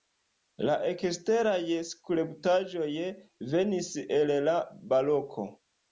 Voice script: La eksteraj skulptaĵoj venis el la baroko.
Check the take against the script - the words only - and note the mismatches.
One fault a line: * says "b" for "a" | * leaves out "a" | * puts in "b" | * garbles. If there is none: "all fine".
all fine